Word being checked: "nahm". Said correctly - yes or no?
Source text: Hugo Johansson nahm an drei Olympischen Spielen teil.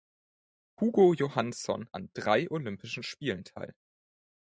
no